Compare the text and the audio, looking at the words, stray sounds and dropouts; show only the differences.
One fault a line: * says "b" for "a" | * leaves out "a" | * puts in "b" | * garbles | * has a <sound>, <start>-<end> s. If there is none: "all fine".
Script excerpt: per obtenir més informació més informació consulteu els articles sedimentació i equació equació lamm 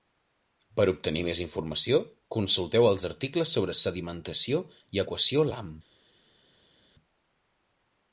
* leaves out "més informació"
* puts in "sobre"
* leaves out "equació"